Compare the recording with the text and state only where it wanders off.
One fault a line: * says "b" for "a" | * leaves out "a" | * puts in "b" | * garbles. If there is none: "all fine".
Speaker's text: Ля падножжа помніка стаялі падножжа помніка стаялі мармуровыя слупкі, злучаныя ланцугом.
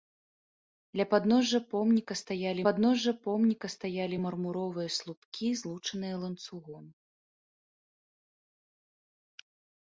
all fine